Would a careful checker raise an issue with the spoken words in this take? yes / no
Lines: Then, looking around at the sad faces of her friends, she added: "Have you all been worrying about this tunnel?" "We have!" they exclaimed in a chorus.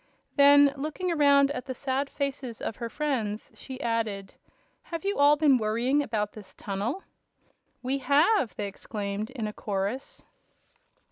no